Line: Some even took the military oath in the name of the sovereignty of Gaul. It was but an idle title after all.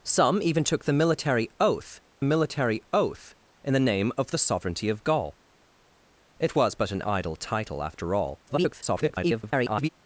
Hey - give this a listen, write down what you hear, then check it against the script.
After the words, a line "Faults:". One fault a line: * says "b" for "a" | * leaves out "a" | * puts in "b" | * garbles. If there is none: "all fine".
Some even took the military oath military oath in the name of the sovereignty of Gaul. It was but an idle title after all. [garbled]
Faults:
* puts in "military oath"
* garbles